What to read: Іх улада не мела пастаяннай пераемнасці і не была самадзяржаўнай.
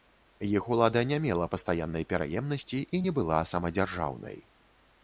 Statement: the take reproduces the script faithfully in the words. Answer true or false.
true